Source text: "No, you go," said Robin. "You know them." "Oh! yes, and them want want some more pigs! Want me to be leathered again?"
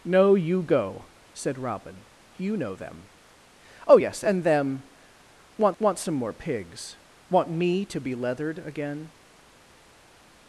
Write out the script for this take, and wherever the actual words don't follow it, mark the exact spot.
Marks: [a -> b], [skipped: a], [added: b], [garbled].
"No, you go," said Robin. "You know them." "Oh! yes, and them want want some more pigs! Want me to be leathered again?"